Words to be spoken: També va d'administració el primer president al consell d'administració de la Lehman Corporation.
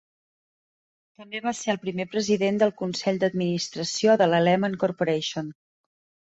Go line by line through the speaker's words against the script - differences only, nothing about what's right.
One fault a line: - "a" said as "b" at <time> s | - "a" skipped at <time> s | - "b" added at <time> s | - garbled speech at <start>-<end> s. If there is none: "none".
- "d'administració" said as "ser" at 1.6 s
- "al" said as "del" at 2.6 s